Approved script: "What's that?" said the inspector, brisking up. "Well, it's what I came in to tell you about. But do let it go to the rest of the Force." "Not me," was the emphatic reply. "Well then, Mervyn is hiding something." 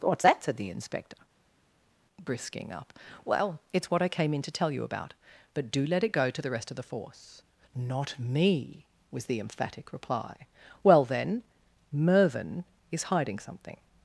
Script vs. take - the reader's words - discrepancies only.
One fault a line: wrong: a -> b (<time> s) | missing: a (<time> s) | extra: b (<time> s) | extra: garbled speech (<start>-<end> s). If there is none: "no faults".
no faults